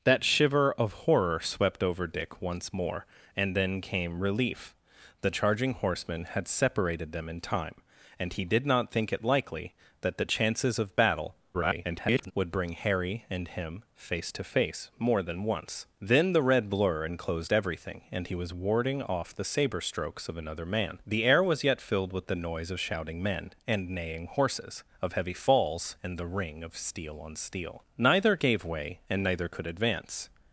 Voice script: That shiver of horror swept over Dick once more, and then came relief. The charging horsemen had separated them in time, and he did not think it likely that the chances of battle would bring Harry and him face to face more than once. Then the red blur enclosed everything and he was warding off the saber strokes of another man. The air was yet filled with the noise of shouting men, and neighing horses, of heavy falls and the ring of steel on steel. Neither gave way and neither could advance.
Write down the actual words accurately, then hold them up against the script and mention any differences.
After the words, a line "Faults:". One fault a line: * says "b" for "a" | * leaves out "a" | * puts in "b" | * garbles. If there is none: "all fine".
That shiver of horror swept over Dick once more, and then came relief. The charging horsemen had separated them in time, and he did not think it likely that the chances of battle [garbled] would bring Harry and him face to face more than once. Then the red blur enclosed everything and he was warding off the saber strokes of another man. The air was yet filled with the noise of shouting men, and neighing horses, of heavy falls and the ring of steel on steel. Neither gave way and neither could advance.
Faults:
* garbles